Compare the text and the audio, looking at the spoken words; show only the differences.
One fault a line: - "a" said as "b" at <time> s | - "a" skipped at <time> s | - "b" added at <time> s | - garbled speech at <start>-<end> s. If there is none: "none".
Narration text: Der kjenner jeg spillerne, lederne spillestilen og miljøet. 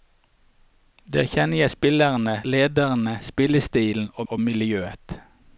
- "og" added at 4.3 s